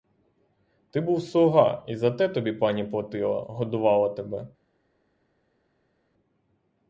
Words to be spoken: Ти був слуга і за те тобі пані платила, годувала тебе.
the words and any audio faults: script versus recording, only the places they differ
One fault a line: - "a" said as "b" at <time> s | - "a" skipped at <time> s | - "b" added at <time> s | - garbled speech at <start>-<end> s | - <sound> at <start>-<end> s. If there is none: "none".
none